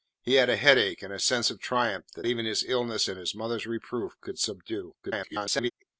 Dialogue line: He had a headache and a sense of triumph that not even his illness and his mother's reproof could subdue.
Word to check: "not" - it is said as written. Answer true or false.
false